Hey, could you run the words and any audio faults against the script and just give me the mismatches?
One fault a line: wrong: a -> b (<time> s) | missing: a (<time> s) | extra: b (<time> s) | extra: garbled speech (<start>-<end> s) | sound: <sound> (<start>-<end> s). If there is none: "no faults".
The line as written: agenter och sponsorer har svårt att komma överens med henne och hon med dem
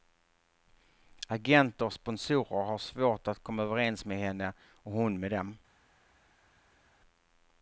no faults